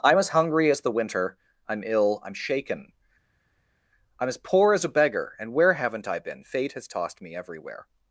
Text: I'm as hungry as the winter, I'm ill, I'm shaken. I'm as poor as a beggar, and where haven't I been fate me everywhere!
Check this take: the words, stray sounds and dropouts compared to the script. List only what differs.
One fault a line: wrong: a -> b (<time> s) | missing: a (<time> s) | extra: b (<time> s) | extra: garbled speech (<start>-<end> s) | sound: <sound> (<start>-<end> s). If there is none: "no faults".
extra: has tossed (6.7 s)